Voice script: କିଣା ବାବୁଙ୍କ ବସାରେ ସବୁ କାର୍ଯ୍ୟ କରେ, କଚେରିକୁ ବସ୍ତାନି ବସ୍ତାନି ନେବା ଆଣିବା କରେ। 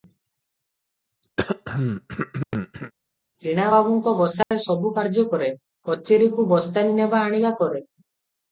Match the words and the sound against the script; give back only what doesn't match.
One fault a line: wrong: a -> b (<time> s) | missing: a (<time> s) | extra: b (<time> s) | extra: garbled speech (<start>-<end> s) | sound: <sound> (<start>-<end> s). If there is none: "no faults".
sound: throat clearing (1.4-2.9 s)
sound: dropout (4.4-4.5 s)
missing: ବସ୍ତାନି (7.0 s)